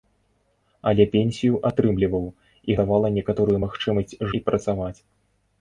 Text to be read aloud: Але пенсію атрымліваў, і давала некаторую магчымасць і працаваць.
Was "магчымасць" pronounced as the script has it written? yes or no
yes